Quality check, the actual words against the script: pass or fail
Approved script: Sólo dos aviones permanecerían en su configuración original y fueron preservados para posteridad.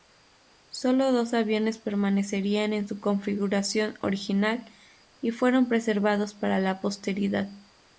fail